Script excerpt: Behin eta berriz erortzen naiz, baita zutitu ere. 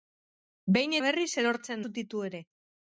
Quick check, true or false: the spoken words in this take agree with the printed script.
false